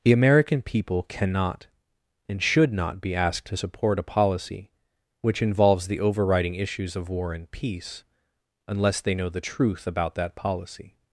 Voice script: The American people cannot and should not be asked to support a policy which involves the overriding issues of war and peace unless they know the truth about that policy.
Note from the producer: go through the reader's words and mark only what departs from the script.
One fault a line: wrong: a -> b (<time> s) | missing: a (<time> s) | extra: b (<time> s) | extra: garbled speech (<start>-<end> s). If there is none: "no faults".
no faults